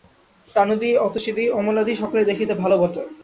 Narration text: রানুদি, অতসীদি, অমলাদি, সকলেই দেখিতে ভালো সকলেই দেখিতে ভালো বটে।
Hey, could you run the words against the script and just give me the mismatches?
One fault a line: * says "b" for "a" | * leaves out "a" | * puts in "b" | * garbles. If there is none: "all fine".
* leaves out "সকলেই দেখিতে ভালো"